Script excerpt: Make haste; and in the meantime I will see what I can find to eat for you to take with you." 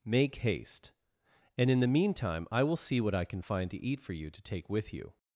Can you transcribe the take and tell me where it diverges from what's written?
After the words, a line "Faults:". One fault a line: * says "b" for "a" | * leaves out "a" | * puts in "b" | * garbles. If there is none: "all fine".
Make haste; and in the meantime I will see what I can find to eat for you to take with you."
Faults:
all fine